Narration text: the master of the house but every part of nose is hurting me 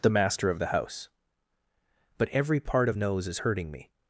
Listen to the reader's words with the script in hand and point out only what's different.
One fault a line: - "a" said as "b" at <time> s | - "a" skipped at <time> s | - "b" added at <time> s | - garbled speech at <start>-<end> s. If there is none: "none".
none